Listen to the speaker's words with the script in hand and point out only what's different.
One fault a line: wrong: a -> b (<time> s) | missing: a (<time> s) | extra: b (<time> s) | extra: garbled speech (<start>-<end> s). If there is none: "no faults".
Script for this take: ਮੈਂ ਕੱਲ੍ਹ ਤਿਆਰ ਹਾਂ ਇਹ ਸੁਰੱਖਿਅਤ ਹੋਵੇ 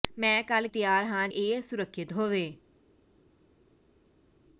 no faults